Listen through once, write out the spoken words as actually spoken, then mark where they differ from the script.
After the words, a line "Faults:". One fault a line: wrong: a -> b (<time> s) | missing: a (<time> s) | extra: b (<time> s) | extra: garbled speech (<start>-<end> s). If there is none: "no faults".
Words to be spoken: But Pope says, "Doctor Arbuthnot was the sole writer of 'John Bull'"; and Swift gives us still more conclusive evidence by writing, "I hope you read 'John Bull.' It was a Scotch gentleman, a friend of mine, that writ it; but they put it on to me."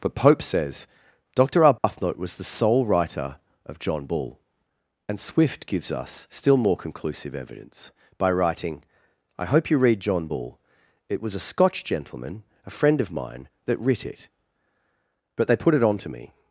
But Pope says, "Doctor Arbuthnot was the sole writer of 'John Bull'"; and Swift gives us still more conclusive evidence by writing, "I hope you read 'John Bull.' It was a Scotch gentleman, a friend of mine, that writ it; but they put it on to me."
Faults:
no faults